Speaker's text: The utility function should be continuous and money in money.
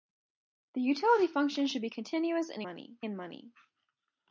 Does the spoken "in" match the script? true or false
true